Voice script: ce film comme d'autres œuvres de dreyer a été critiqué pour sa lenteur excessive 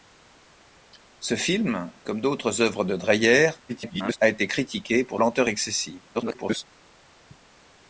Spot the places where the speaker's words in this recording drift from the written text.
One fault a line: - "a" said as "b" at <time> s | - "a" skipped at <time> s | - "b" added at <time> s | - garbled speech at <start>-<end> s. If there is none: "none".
- garbled speech at 3.7-4.2 s
- "sa" skipped at 5.2 s
- garbled speech at 6.1-6.7 s